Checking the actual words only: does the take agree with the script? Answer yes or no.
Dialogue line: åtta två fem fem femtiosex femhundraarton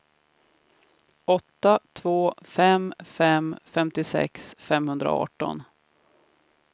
yes